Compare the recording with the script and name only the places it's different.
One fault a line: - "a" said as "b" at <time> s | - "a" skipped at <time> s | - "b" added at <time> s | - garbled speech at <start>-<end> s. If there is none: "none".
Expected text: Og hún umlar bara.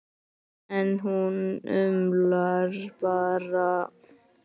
- "Og" said as "En" at 0.8 s